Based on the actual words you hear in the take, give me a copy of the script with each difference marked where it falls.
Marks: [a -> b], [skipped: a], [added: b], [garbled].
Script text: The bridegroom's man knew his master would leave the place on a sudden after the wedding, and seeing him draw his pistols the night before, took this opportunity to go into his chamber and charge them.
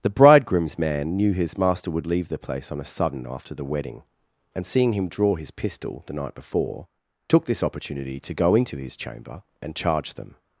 The bridegroom's man knew his master would leave the place on a sudden after the wedding, and seeing him draw his [pistols -> pistol] the night before, took this opportunity to go into his chamber and charge them.